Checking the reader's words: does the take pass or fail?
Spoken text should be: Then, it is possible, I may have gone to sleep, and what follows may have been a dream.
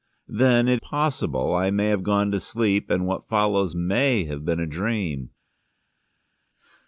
fail